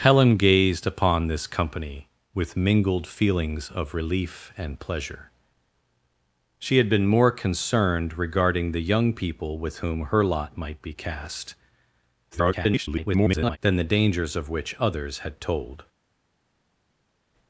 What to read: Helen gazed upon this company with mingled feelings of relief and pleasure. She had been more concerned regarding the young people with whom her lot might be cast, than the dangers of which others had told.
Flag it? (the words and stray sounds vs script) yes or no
yes